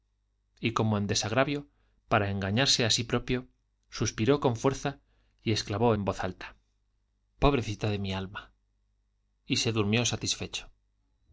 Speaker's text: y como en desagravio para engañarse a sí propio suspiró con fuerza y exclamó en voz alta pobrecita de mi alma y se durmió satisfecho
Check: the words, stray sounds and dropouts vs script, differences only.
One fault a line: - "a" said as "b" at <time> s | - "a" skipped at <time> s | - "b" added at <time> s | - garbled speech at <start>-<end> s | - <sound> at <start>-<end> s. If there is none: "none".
none